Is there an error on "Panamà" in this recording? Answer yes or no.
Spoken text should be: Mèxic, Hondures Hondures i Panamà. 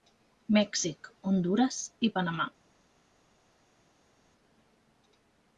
no